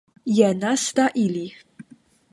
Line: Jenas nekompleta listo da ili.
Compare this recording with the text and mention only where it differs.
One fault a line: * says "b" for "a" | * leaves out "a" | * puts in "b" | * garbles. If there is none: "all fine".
* leaves out "nekompleta listo"